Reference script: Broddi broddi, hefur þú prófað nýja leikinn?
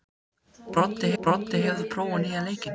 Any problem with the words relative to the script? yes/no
no